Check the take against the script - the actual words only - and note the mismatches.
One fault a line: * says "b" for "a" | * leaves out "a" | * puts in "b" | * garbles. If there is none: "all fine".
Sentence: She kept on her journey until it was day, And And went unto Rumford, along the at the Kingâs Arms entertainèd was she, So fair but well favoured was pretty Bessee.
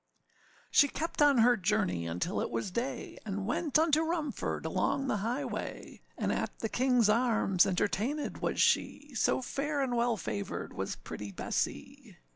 * leaves out "And"
* puts in "highway And"
* says "and" for "but"